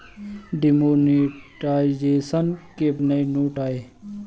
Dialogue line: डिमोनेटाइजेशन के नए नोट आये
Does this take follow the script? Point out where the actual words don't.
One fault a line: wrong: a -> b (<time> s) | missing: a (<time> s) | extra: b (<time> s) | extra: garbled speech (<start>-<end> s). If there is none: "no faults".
no faults